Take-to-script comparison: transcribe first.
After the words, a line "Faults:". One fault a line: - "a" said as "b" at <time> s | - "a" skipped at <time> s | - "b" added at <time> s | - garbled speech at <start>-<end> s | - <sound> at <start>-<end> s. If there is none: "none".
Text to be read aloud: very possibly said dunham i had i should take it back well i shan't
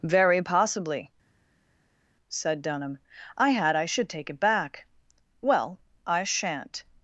very possibly said dunham i had i should take it back well i shan't
Faults:
none